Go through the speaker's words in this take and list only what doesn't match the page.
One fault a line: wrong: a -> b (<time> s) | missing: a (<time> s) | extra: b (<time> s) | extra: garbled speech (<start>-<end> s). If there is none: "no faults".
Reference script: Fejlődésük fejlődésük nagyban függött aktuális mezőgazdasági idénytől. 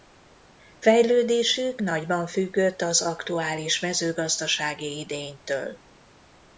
missing: fejlődésük (1.8 s)
extra: az (2.8 s)